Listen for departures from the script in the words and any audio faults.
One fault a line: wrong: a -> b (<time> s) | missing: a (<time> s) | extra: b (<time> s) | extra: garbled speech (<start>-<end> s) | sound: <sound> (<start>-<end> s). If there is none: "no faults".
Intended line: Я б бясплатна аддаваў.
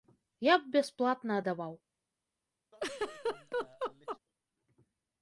sound: laugh (2.7-4.2 s)